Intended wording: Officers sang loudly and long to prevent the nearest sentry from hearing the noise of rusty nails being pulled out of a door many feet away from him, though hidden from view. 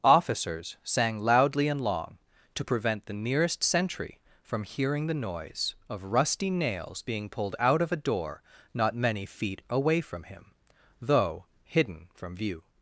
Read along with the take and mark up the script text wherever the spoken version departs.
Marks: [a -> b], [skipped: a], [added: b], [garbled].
Officers sang loudly and long to prevent the nearest sentry from hearing the noise of rusty nails being pulled out of a door [added: not] many feet away from him, though hidden from view.